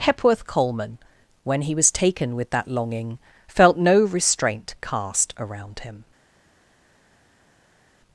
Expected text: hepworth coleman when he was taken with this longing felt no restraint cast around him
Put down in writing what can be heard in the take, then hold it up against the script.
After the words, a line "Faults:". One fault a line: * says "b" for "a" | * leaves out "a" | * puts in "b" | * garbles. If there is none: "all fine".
hepworth coleman when he was taken with that longing felt no restraint cast around him
Faults:
* says "that" for "this"